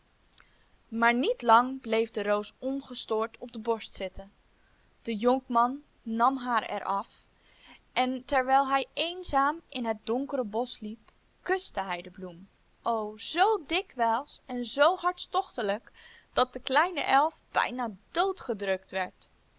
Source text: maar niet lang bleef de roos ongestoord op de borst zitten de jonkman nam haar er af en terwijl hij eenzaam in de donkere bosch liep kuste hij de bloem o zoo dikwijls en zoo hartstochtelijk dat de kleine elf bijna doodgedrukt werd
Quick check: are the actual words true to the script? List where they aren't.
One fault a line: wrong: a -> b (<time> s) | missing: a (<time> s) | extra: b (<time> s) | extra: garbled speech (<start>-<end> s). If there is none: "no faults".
wrong: de -> het (9.8 s)